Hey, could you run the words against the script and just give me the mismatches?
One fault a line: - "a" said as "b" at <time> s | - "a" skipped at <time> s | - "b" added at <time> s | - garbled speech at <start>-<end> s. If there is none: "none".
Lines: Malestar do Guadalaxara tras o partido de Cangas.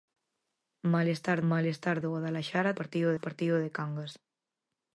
- "malestar" added at 1.5 s
- "tras" said as "partido" at 2.8 s